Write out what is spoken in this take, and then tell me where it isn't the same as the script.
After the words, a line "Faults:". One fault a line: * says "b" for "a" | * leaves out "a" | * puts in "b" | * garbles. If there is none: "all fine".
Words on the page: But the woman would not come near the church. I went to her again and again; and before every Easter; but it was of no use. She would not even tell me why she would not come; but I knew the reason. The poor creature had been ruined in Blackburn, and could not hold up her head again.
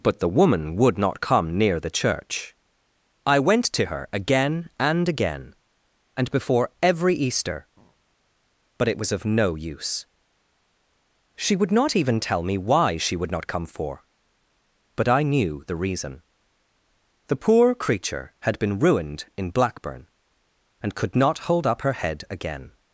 But the woman would not come near the church. I went to her again and again; and before every Easter; but it was of no use. She would not even tell me why she would not come; for but I knew the reason. The poor creature had been ruined in Blackburn, and could not hold up her head again.
Faults:
* puts in "for"